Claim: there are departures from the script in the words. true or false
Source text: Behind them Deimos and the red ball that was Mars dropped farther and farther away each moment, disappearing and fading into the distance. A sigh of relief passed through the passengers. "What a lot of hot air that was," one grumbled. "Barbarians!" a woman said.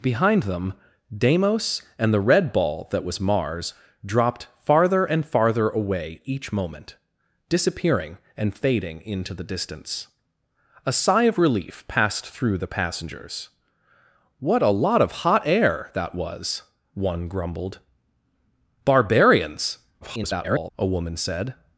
true